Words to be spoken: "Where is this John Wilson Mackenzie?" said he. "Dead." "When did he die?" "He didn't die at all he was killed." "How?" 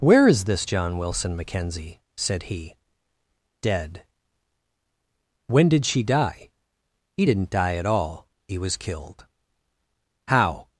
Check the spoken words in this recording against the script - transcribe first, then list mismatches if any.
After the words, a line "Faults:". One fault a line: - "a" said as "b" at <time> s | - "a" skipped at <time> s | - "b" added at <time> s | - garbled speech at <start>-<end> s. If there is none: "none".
"Where is this John Wilson Mackenzie?" said he. "Dead." "When did she die?" "He didn't die at all he was killed." "How?"
Faults:
- "he" said as "she" at 5.8 s